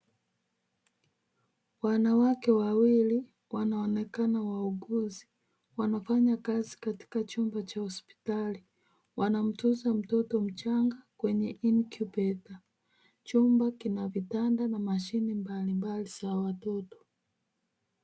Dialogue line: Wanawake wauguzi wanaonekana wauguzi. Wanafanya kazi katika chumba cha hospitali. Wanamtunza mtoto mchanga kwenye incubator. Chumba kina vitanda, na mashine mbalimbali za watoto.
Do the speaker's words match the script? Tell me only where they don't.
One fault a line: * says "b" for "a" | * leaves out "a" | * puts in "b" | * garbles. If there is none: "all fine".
* says "wawili" for "wauguzi"